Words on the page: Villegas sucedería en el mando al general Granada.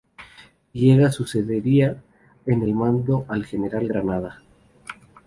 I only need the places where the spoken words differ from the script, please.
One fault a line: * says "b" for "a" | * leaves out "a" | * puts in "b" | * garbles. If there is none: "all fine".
all fine